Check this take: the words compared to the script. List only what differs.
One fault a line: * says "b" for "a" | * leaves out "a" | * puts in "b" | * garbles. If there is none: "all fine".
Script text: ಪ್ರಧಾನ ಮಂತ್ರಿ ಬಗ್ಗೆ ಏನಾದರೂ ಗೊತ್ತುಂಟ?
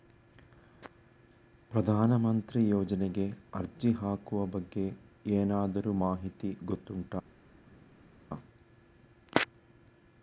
* puts in "ಯೋಜನೆಗೆ ಅರ್ಜಿ ಹಾಕುವ"
* puts in "ಮಾಹಿತಿ"